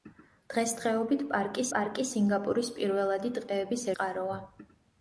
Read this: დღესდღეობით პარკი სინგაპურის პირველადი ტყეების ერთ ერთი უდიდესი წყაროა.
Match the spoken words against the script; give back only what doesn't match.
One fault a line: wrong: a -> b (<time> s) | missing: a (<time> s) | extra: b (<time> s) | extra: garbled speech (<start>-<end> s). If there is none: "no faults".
extra: პარკი (1.7 s)
missing: ერთ ერთი უდიდესი (3.9 s)